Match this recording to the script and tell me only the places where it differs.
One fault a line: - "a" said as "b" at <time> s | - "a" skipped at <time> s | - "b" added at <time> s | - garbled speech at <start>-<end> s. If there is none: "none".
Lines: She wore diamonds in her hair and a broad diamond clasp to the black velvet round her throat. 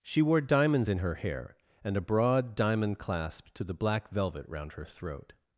none